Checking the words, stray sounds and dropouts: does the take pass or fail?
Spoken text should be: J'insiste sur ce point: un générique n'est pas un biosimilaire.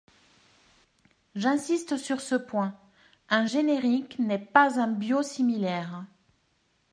pass